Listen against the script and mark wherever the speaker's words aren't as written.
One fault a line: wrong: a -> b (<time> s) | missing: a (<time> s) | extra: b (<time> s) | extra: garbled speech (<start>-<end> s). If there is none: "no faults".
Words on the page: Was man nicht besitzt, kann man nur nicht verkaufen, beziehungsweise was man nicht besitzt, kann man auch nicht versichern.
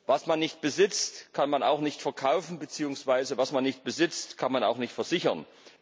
wrong: nur -> auch (1.6 s)